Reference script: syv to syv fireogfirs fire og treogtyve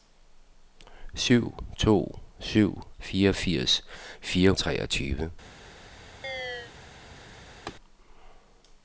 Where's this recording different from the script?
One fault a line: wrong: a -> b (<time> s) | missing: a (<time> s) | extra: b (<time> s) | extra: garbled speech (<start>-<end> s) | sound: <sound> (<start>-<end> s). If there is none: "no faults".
sound: chirp (6.2-6.7 s)
sound: laugh (7.7-7.7 s)